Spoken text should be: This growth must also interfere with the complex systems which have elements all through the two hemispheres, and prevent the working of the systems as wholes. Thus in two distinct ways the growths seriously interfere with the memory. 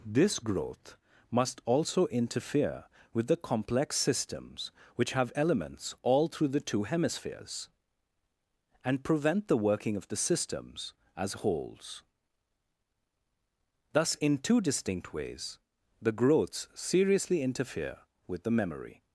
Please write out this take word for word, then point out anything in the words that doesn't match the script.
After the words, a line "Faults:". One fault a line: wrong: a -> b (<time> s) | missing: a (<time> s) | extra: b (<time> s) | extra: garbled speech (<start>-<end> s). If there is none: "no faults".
This growth must also interfere with the complex systems which have elements all through the two hemispheres, and prevent the working of the systems as wholes. Thus in two distinct ways the growths seriously interfere with the memory.
Faults:
no faults